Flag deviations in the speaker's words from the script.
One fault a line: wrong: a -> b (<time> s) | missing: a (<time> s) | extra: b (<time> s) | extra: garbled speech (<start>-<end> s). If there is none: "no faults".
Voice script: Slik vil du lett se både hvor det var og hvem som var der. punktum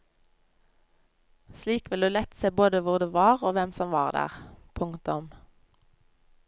no faults